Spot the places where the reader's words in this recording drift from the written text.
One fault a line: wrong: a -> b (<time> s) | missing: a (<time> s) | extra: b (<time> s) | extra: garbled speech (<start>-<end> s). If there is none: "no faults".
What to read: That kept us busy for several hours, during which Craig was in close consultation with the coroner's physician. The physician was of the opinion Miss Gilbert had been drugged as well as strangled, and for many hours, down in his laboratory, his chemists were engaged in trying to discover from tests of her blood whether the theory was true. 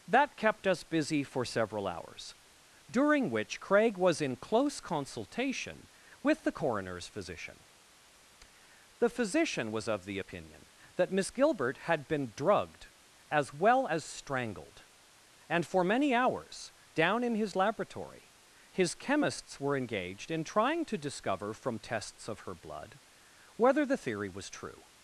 extra: that (11.0 s)